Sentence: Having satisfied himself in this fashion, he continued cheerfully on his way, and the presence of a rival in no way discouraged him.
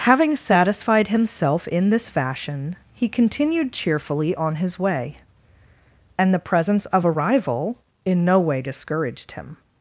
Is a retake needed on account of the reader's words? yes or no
no